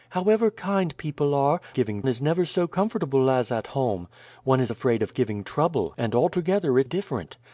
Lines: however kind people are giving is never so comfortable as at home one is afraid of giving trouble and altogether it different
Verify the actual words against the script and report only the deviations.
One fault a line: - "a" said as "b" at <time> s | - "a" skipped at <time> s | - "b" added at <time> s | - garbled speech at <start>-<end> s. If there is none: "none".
none